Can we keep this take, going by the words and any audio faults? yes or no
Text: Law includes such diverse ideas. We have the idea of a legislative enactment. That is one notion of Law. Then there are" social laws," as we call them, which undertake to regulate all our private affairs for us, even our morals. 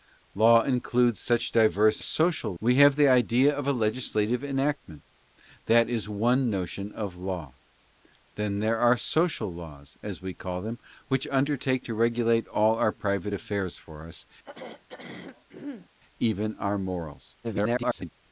no